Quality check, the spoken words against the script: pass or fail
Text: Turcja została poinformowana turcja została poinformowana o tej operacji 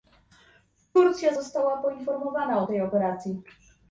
fail